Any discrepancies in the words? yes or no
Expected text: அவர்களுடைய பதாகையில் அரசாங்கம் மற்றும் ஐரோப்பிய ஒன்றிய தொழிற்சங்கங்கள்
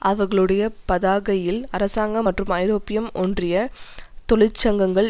no